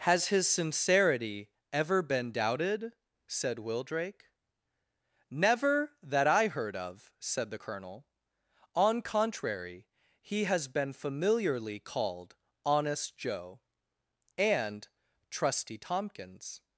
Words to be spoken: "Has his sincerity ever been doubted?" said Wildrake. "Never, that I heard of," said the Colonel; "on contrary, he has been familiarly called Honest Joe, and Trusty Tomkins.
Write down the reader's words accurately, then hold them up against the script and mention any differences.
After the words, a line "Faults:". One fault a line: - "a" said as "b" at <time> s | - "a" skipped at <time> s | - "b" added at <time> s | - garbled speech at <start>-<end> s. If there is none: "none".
"Has his sincerity ever been doubted?" said Wildrake. "Never, that I heard of," said the Colonel; "on contrary, he has been familiarly called Honest Joe, and Trusty Tomkins.
Faults:
none